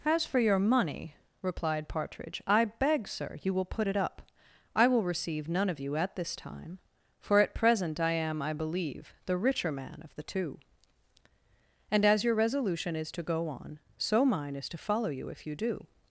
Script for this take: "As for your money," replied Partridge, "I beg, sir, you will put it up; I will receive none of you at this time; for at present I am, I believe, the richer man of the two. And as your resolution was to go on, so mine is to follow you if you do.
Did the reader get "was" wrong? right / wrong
wrong